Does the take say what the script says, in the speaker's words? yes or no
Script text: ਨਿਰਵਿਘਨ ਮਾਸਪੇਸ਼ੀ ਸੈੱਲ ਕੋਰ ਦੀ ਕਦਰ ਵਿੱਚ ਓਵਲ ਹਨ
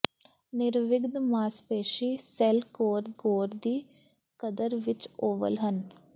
no